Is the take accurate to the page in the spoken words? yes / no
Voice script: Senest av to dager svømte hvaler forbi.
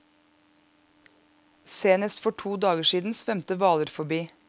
no